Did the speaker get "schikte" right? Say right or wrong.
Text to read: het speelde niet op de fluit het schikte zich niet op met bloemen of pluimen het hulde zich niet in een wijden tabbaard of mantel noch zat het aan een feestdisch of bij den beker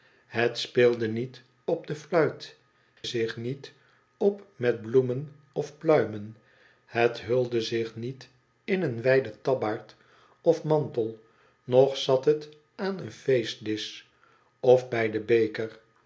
wrong